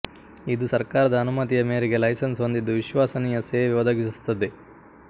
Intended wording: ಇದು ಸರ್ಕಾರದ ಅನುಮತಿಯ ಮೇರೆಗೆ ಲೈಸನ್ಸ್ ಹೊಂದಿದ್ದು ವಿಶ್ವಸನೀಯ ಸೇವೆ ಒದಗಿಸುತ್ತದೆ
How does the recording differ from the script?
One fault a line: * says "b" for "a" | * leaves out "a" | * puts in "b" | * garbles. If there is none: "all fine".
all fine